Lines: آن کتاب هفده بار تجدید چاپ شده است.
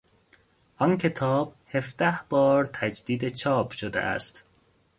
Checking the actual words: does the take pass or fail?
pass